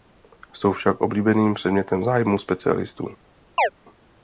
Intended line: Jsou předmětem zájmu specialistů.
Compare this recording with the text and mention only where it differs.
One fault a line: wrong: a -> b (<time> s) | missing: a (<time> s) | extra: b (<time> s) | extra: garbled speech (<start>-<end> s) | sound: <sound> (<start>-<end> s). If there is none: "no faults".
extra: však oblíbeným (0.7 s)
sound: chirp (3.6-3.7 s)